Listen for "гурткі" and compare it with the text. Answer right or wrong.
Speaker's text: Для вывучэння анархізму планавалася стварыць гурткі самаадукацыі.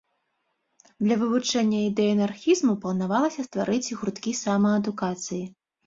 right